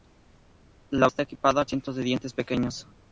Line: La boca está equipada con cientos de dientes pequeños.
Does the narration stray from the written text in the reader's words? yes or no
yes